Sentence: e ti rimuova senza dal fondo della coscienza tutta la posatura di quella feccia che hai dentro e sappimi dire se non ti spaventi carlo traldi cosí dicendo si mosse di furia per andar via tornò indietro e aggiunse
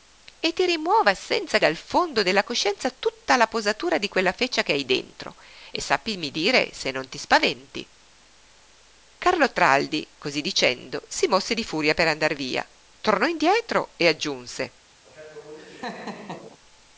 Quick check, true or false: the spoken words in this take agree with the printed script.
true